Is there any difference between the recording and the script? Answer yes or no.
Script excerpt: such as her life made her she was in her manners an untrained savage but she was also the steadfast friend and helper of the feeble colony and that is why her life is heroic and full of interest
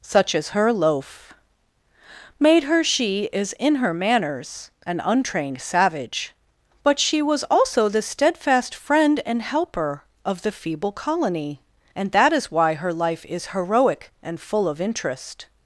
yes